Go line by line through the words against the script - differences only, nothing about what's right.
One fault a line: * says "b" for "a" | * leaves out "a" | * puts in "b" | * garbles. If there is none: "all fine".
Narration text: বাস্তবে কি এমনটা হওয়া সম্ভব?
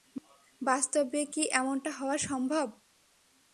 all fine